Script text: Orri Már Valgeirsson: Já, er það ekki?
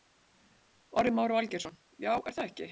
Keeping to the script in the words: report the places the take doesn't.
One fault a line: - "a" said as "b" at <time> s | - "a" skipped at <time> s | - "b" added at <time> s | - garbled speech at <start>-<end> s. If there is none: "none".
none